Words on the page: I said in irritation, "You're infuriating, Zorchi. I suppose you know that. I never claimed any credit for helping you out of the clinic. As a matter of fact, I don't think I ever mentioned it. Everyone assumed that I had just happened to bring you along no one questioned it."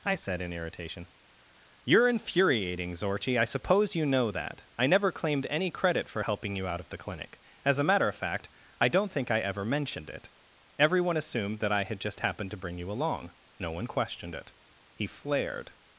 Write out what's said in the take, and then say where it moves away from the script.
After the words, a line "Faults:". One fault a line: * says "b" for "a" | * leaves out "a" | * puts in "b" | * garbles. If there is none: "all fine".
I said in irritation, "You're infuriating, Zorchi. I suppose you know that. I never claimed any credit for helping you out of the clinic. As a matter of fact, I don't think I ever mentioned it. Everyone assumed that I had just happened to bring you along no one questioned it." He flared
Faults:
* puts in "He flared"